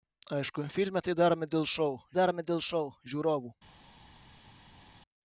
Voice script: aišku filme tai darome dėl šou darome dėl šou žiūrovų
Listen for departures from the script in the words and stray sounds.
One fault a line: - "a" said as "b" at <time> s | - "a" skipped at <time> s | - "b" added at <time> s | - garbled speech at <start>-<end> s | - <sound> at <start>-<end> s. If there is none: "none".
none